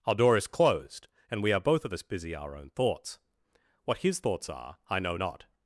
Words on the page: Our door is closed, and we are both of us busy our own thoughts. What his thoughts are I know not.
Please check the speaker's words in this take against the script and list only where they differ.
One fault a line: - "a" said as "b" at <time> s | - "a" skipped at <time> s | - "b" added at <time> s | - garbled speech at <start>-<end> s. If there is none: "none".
none